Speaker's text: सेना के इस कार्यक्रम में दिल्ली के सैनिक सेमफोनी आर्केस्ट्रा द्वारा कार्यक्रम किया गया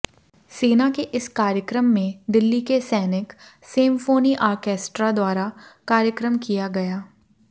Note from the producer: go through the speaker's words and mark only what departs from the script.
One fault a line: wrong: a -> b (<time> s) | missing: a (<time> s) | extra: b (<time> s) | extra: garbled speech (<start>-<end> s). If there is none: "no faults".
no faults